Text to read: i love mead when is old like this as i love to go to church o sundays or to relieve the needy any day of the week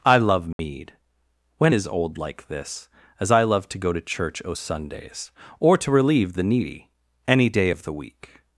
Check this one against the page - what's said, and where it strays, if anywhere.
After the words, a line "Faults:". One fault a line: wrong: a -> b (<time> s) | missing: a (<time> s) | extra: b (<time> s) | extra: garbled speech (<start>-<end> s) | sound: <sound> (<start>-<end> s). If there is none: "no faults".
i love mead when is old like this as i love to go to church o sundays or to relieve the needy any day of the week
Faults:
sound: dropout (0.5-0.6 s)